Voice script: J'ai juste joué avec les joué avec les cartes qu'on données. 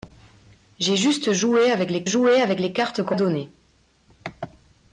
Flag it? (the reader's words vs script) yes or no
no